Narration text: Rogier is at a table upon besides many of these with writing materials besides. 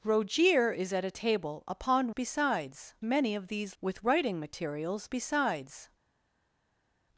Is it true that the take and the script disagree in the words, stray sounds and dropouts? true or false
false